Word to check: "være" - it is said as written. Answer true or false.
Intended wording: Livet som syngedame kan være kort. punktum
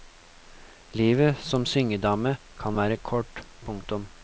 true